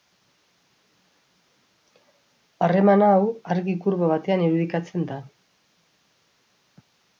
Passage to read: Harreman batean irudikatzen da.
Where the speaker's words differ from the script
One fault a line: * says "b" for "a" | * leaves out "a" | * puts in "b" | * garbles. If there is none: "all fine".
* puts in "hau argi kurba"